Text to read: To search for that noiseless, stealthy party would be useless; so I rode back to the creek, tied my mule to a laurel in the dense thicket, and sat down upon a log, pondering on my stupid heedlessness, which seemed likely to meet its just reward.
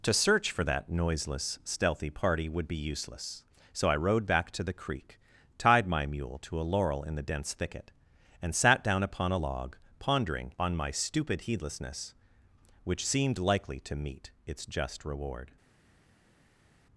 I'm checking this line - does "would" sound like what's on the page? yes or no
yes